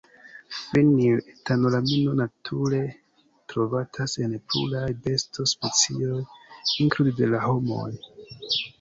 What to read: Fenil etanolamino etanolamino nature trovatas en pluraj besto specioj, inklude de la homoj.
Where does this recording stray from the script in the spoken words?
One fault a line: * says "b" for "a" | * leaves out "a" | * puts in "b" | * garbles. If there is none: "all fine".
* leaves out "etanolamino"